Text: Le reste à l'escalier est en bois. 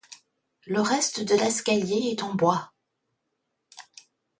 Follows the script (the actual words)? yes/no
no